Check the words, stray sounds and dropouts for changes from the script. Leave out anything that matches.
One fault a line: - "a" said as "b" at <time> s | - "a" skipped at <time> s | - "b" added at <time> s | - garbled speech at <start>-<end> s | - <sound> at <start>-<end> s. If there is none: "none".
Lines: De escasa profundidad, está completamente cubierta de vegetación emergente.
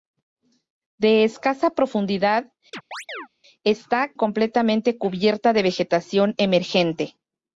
- chirp at 2.7-3.3 s